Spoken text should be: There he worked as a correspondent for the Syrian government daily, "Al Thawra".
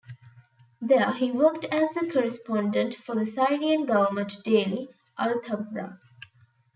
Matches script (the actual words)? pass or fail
pass